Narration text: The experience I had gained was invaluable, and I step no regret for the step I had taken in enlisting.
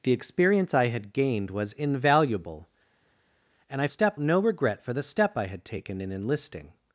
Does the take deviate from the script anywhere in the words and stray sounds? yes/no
no